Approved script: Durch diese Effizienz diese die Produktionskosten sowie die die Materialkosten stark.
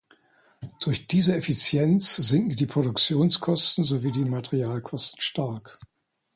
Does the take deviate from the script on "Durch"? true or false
false